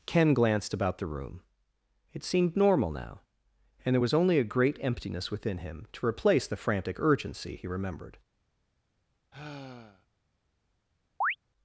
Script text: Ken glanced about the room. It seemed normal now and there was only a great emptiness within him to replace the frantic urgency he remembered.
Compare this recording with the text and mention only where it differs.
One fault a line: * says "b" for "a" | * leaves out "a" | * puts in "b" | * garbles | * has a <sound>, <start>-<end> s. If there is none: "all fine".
* has a sigh, 9.3-10.1 s
* has a chirp, 11.2-11.4 s